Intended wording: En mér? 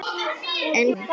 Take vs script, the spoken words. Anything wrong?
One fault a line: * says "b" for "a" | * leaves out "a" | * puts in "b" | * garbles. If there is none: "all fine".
all fine